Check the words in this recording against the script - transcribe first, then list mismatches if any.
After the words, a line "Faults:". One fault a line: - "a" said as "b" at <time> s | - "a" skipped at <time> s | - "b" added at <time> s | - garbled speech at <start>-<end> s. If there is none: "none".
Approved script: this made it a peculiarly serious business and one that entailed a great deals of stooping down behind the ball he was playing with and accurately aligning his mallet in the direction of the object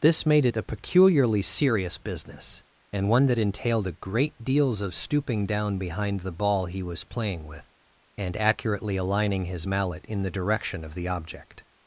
this made it a peculiarly serious business and one that entailed a great deals of stooping down behind the ball he was playing with and accurately aligning his mallet in the direction of the object
Faults:
none